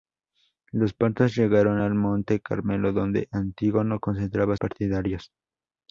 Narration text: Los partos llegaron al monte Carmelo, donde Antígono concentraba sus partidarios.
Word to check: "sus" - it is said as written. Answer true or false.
false